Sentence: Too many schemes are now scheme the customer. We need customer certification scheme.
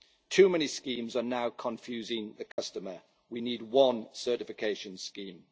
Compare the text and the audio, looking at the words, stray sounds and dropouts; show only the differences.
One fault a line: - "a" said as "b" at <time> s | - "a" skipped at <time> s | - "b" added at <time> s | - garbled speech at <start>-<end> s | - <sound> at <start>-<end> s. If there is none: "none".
- "scheme" said as "confusing" at 1.5 s
- dropout at 2.5-2.6 s
- "customer" said as "one" at 3.6 s